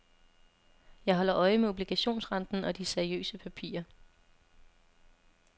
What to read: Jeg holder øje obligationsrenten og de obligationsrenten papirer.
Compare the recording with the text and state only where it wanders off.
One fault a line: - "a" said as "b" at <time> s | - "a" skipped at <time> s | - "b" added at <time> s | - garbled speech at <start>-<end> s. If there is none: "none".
- "med" added at 1.6 s
- "obligationsrenten" said as "seriøse" at 2.9 s